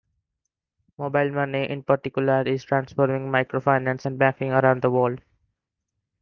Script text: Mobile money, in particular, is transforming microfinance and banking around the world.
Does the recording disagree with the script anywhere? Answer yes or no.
no